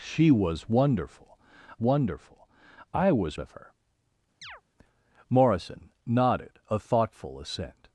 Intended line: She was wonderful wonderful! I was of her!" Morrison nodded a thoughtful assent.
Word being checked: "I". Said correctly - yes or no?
yes